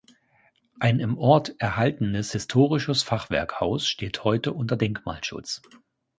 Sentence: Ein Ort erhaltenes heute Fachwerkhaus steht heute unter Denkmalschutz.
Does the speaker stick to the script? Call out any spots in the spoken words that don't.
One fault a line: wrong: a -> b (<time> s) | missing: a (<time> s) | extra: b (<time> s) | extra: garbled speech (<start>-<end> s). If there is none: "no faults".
extra: im (1.0 s)
wrong: heute -> historisches (2.3 s)